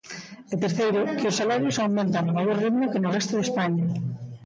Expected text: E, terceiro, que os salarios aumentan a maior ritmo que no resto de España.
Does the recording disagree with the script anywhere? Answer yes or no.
no